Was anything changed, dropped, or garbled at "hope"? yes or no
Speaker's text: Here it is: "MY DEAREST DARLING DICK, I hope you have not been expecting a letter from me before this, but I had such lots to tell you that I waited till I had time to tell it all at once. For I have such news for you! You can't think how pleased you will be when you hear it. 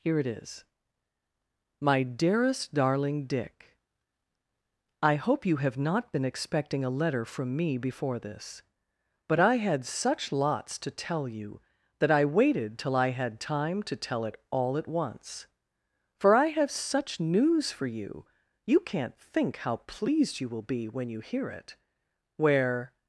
no